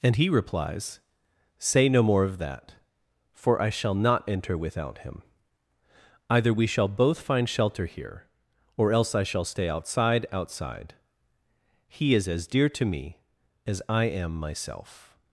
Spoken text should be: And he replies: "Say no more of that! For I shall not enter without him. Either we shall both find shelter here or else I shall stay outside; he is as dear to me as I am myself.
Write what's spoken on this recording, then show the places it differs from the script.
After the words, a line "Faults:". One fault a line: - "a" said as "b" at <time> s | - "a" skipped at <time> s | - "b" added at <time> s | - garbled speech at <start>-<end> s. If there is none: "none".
And he replies: "Say no more of that! For I shall not enter without him. Either we shall both find shelter here or else I shall stay outside outside; he is as dear to me as I am myself.
Faults:
- "outside" added at 10.3 s